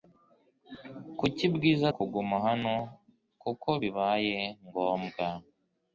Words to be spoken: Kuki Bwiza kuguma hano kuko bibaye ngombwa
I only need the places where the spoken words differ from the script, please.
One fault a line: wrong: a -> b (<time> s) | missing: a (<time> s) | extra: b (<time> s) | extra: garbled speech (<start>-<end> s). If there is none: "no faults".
no faults